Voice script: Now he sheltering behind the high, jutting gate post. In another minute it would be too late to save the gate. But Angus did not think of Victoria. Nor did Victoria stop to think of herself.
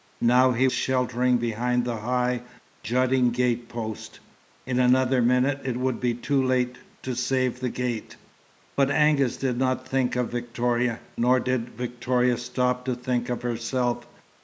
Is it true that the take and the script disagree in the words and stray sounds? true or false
false